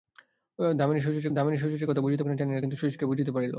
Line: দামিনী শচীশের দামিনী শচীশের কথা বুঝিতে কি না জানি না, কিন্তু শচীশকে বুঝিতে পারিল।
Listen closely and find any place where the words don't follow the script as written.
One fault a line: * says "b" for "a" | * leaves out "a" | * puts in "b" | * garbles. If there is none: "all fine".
all fine